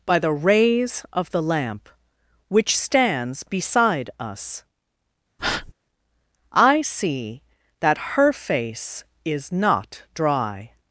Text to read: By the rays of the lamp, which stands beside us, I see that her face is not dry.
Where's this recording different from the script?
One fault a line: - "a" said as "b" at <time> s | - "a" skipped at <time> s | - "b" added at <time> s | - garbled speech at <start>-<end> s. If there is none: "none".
none